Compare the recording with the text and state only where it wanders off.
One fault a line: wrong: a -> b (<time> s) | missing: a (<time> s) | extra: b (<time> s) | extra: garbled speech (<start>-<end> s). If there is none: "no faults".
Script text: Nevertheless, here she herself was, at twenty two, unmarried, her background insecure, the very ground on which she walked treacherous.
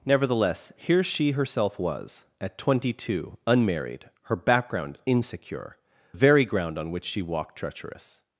missing: the (5.8 s)